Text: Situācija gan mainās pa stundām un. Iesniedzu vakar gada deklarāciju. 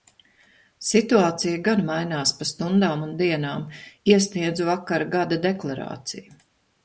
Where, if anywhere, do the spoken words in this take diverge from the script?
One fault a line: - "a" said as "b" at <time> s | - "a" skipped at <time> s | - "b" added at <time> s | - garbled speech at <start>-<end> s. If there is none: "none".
- "dienām" added at 3.2 s